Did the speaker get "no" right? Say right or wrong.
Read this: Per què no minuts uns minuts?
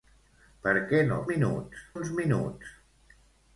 right